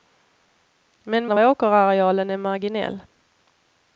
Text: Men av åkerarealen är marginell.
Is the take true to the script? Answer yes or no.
yes